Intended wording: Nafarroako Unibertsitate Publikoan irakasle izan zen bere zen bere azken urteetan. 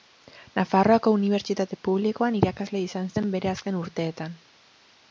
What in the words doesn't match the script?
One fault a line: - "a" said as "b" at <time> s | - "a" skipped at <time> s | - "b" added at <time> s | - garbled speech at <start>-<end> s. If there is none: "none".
- "zen bere" skipped at 3.5 s